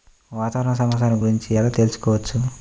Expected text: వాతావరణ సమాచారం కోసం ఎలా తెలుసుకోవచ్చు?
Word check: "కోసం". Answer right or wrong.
wrong